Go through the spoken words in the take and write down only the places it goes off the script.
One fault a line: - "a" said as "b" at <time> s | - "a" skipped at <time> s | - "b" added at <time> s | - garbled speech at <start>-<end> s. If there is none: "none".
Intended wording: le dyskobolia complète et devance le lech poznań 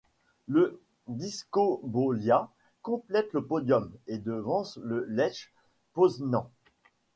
- "le podium" added at 3.3 s